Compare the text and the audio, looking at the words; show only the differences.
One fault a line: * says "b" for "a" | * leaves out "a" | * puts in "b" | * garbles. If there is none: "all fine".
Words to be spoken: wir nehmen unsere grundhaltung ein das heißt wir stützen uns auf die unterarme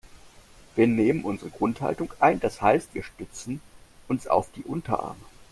all fine